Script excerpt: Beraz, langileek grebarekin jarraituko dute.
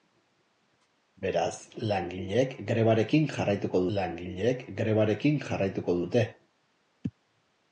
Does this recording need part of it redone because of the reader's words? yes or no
yes